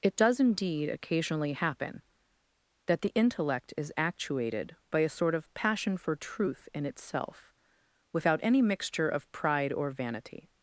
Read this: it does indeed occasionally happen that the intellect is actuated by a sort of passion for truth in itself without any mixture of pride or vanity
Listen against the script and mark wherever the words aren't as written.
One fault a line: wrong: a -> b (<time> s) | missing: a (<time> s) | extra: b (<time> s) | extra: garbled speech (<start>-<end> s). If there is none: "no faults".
no faults